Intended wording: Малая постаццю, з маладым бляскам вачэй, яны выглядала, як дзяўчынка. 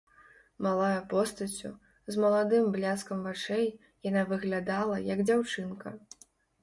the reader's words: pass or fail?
fail